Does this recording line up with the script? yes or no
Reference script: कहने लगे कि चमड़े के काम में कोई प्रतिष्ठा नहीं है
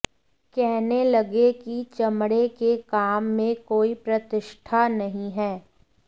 yes